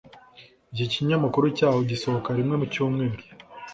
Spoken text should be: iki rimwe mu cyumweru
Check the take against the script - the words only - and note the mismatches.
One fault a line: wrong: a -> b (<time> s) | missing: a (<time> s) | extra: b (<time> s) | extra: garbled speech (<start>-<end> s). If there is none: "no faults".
extra: kinyamakuru cyaho gisohoka (0.9 s)